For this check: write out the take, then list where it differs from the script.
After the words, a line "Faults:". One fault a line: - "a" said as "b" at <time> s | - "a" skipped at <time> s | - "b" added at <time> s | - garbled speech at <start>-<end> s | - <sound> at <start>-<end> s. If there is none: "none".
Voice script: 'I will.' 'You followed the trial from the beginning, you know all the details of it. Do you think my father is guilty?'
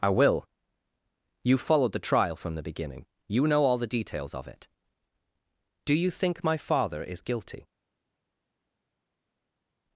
'I will.' 'You followed the trial from the beginning, you know all the details of it. Do you think my father is guilty?'
Faults:
none